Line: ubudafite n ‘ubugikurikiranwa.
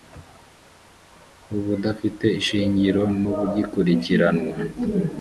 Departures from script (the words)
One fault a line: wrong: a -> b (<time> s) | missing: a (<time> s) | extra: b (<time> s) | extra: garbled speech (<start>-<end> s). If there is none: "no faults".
extra: ishingiro (2.4 s)